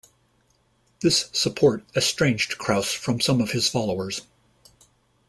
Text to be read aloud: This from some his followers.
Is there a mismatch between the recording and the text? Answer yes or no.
yes